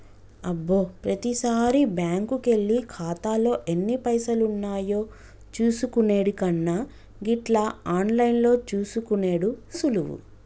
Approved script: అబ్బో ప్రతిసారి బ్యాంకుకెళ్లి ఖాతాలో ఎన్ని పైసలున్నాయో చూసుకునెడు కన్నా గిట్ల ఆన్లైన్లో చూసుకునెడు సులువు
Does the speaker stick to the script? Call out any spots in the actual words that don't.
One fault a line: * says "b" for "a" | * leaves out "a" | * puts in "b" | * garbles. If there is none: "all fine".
all fine